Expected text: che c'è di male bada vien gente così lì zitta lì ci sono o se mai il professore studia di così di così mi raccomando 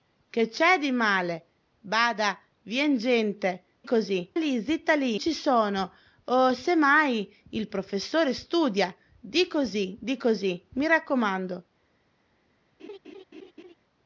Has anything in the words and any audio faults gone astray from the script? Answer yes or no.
yes